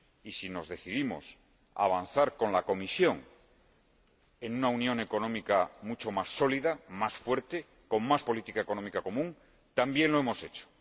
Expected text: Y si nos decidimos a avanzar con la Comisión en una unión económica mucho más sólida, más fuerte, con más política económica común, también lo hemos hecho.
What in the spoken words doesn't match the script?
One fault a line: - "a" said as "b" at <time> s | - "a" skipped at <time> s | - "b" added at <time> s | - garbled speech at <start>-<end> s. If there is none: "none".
none